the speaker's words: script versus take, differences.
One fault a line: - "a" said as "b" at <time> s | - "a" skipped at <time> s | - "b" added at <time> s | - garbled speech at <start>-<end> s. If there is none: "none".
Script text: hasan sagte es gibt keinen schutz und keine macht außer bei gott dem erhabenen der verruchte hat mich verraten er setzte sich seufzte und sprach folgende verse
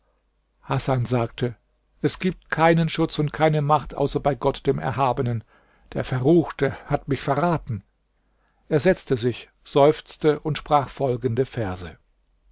none